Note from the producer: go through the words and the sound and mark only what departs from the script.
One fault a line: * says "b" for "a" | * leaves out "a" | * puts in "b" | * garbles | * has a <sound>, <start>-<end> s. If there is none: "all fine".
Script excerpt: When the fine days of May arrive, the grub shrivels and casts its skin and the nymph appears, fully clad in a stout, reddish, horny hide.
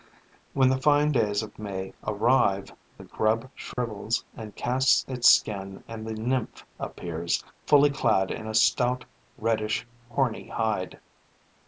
* has a dropout, 3.7-3.8 s